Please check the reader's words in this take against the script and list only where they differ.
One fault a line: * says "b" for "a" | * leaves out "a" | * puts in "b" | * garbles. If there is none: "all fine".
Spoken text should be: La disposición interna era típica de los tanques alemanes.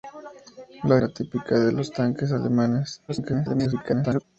* leaves out "disposición interna"
* garbles